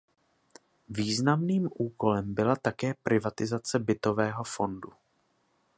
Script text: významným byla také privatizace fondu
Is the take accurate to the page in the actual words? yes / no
no